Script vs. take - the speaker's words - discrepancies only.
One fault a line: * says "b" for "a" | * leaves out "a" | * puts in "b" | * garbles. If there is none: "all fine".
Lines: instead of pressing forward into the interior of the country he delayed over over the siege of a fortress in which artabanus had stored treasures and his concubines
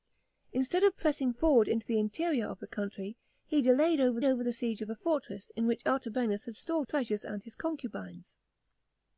all fine